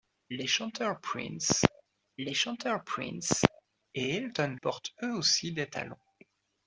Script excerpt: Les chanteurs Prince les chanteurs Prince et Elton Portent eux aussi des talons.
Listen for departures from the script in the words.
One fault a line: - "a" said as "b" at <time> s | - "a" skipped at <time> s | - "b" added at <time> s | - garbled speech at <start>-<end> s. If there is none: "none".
none